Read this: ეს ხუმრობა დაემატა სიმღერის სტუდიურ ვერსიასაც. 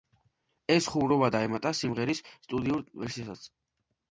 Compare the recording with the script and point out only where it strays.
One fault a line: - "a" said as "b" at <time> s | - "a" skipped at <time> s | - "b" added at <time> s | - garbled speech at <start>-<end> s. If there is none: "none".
none